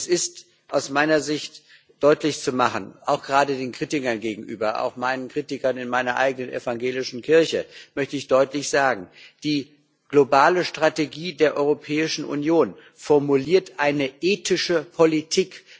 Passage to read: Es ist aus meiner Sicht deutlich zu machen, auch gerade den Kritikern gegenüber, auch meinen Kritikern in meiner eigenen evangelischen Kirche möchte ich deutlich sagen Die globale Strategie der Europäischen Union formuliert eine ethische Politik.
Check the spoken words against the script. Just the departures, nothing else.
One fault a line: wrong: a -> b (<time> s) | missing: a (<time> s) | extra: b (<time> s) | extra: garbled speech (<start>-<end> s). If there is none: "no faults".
no faults